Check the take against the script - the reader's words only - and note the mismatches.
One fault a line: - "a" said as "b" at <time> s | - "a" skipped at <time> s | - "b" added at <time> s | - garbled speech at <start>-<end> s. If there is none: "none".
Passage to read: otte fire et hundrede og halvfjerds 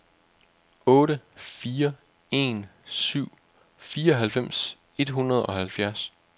- "en syv fireoghalvfems" added at 2.3 s